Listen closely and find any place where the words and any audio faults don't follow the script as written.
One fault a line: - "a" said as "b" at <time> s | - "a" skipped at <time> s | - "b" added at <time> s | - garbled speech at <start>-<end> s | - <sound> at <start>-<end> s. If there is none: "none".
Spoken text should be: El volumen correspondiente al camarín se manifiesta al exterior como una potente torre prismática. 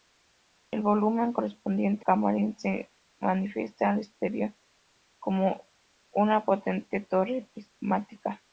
- "al" skipped at 2.1 s